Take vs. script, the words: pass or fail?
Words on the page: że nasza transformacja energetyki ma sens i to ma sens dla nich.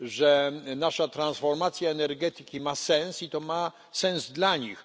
pass